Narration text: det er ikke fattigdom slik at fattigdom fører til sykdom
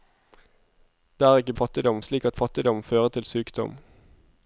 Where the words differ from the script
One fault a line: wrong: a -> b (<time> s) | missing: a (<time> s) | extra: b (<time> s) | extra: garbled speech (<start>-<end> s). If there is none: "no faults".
no faults